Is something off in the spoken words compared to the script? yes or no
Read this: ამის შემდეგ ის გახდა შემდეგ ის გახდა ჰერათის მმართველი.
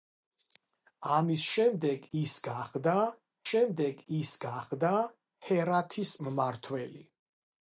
no